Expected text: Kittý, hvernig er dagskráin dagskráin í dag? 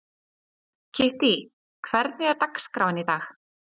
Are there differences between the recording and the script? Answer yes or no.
yes